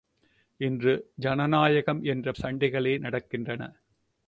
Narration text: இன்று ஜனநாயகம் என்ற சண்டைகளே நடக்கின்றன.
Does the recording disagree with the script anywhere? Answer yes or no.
no